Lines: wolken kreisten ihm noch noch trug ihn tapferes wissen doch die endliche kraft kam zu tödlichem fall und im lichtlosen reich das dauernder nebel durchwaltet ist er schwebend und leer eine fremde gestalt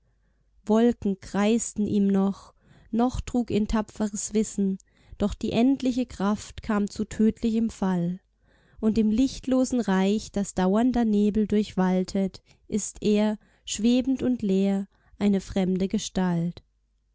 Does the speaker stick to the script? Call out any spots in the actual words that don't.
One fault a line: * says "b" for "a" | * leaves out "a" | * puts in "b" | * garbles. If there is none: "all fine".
all fine